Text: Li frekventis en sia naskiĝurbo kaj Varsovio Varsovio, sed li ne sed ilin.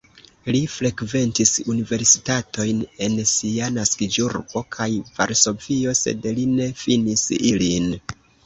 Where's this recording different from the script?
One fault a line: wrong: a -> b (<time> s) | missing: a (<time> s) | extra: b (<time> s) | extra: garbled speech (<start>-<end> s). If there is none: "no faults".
extra: universitatojn (1.7 s)
missing: Varsovio (6.0 s)
wrong: sed -> finis (6.9 s)